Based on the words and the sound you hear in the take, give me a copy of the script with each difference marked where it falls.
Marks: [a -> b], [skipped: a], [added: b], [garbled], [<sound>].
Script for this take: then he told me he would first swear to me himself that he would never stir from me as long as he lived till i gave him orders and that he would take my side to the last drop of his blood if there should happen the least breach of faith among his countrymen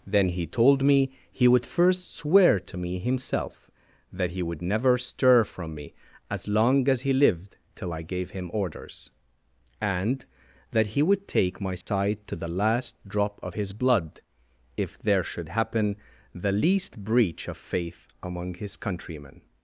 then he told me he would first swear to me himself that he would never stir from me as long as he lived till i gave him orders and that he would take my side [dropout] to the last drop of his blood if there should happen the least breach of faith among his countrymen